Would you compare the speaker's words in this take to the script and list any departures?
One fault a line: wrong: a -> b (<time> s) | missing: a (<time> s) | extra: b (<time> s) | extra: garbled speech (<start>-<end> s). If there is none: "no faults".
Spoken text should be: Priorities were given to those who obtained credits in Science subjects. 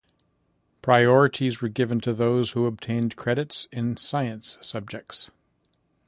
no faults